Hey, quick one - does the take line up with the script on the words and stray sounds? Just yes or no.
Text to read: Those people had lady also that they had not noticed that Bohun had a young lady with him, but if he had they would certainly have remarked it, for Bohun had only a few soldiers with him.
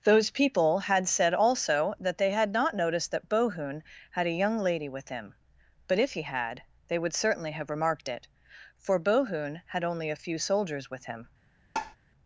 no